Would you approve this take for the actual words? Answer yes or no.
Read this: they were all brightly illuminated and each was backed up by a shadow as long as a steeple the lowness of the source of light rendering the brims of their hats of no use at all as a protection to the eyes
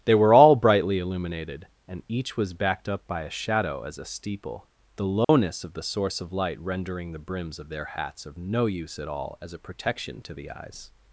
no